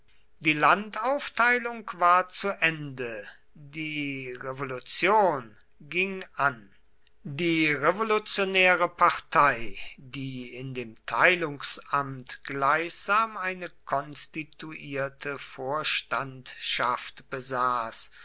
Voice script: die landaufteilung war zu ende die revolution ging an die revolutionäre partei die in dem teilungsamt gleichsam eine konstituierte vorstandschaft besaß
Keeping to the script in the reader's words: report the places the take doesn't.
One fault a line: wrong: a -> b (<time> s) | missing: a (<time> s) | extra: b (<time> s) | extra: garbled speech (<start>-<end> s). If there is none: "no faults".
no faults